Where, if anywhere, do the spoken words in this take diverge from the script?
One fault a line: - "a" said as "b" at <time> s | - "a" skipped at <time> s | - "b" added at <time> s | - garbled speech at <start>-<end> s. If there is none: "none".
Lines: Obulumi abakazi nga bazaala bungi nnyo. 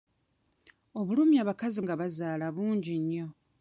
none